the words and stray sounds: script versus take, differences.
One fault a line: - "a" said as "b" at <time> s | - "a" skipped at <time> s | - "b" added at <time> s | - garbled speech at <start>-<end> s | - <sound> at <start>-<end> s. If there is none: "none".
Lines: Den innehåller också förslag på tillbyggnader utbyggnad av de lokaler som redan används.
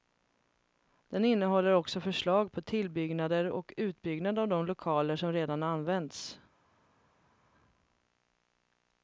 - "och" added at 3.5 s